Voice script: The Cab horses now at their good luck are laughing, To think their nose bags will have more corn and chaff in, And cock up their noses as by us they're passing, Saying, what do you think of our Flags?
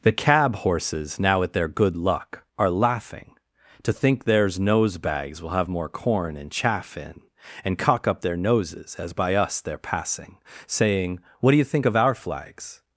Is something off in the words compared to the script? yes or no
yes